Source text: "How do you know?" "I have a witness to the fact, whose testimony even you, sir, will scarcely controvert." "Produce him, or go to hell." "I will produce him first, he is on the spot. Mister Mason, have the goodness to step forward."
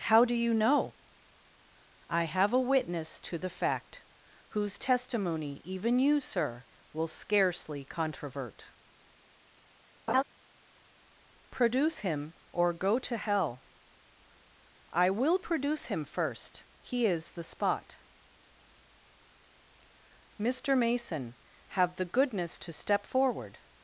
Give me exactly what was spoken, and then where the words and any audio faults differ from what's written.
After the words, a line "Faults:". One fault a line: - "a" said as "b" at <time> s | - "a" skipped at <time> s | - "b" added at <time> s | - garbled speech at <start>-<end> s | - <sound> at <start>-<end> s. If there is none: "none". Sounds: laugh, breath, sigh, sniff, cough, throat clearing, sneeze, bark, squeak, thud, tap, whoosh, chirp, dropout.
"How do you know?" "I have a witness to the fact, whose testimony even you, sir, will scarcely controvert." "Produce him, or go to hell." "I will produce him first, he is the spot. Mister Mason, have the goodness to step forward."
Faults:
- laugh at 10.1-10.2 s
- "on" skipped at 17.3 s